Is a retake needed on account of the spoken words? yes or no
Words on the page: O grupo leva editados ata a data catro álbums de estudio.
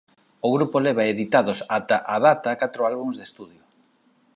no